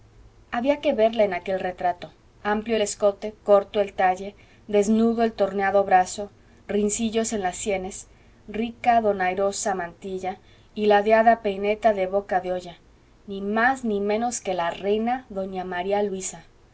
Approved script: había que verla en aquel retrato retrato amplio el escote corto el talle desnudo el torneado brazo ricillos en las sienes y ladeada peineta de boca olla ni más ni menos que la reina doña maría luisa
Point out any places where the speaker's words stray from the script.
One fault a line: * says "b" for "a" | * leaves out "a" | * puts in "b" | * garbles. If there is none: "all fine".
* leaves out "retrato"
* puts in "rica donairosa mantilla"
* puts in "de"